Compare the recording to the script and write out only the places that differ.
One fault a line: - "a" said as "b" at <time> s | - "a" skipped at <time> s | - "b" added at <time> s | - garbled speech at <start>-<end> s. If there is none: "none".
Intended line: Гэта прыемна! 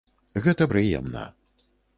none